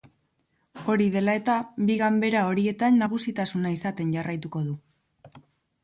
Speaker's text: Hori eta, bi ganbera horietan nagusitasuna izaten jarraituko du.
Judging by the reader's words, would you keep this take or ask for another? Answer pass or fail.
fail